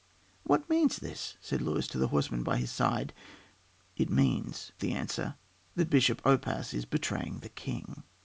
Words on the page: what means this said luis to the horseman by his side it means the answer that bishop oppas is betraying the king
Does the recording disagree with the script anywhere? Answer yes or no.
no